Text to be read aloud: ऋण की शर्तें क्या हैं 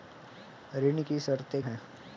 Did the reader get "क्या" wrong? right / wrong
wrong